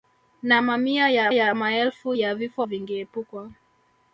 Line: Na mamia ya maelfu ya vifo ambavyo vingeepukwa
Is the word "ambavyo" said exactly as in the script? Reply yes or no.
no